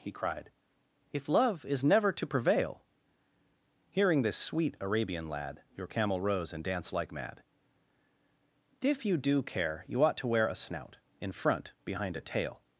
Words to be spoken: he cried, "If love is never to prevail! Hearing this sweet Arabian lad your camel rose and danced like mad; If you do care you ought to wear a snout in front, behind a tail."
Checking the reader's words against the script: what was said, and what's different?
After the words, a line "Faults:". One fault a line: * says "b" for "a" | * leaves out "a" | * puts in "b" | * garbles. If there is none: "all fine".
he cried, "If love is never to prevail! Hearing this sweet Arabian lad your camel rose and danced like mad; If you do care you ought to wear a snout in front, behind a tail."
Faults:
all fine